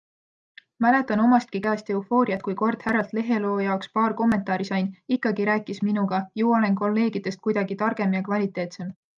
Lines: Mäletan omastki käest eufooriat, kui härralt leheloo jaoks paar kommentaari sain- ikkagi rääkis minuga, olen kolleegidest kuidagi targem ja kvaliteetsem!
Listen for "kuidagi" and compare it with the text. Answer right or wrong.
right